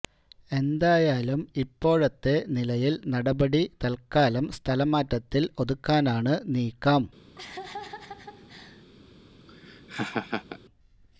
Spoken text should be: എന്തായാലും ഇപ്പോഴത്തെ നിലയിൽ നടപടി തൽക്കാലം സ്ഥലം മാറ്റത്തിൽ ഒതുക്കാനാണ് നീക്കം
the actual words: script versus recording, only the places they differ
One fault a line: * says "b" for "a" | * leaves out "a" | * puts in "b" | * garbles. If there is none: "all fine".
all fine